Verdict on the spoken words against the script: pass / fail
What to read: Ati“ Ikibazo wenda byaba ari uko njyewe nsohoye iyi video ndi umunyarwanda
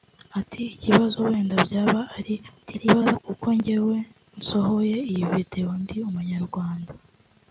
fail